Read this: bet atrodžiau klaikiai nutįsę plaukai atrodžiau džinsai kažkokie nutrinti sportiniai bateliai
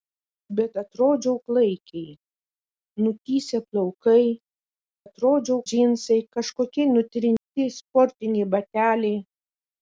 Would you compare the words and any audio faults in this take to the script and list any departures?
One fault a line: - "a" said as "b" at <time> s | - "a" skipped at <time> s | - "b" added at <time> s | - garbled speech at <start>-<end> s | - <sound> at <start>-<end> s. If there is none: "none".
- dropout at 7.4-7.5 s